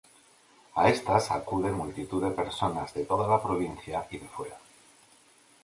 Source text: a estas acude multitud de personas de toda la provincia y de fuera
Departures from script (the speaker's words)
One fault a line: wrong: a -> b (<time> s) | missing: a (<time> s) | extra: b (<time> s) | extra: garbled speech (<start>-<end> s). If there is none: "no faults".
no faults